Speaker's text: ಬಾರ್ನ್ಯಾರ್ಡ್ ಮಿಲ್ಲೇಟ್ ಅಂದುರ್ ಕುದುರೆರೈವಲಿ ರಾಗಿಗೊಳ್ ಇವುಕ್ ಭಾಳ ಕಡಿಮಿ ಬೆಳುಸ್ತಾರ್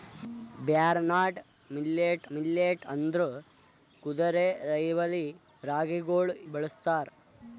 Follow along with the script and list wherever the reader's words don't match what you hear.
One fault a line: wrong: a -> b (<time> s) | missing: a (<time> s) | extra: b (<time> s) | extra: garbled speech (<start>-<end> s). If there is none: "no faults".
extra: ಮಿಲ್ಲೇಟ್ (2.3 s)
missing: ಇವುಕ್ ಭಾಳ ಕಡಿಮಿ (6.3 s)